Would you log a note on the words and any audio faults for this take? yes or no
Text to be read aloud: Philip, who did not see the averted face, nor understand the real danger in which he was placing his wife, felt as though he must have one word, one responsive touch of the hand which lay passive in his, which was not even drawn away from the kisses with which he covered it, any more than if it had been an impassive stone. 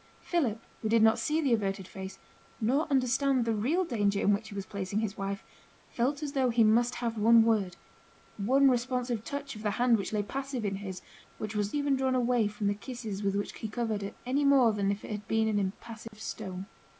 yes